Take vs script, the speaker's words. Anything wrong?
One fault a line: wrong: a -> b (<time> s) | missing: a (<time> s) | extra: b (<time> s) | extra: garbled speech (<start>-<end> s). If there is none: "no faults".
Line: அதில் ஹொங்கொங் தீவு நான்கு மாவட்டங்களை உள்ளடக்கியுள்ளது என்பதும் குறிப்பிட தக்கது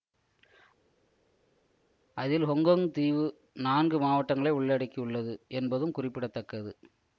no faults